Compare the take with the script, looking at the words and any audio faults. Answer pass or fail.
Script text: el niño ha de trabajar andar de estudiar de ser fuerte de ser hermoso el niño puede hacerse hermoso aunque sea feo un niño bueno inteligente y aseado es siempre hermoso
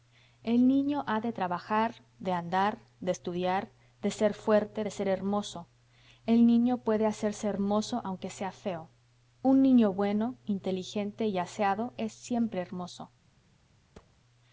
fail